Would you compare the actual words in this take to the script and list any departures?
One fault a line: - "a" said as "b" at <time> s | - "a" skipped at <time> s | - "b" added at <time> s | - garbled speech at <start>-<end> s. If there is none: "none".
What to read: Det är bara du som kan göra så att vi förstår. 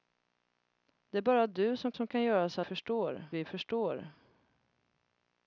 - "som" added at 1.9 s
- "att" said as "förstår" at 2.6 s